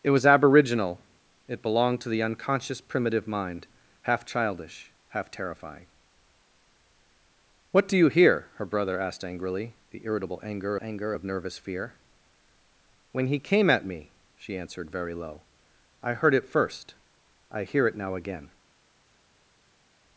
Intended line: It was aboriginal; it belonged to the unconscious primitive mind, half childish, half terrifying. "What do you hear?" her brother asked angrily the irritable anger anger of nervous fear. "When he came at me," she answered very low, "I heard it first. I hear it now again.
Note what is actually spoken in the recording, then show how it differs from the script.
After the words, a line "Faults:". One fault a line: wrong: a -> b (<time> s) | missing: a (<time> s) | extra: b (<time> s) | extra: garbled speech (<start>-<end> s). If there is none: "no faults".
It was aboriginal; it belonged to the unconscious primitive mind, half childish, half terrifying. "What do you hear?" her brother asked angrily the irritable anger anger of nervous fear. "When he came at me," she answered very low, "I heard it first. I hear it now again.
Faults:
no faults